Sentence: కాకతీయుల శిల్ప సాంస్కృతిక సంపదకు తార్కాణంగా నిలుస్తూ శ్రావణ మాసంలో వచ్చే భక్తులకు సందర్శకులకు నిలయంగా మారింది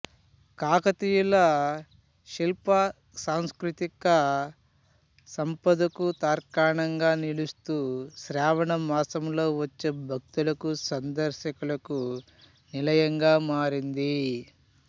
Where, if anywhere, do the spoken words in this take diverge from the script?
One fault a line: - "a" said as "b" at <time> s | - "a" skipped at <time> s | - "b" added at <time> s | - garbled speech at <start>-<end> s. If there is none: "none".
none